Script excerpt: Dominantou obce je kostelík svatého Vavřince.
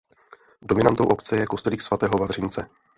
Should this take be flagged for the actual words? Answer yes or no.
no